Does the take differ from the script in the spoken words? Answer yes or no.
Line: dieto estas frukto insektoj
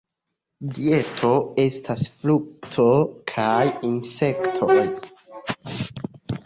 yes